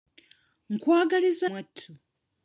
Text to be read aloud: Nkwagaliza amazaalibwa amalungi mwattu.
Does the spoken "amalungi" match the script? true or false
false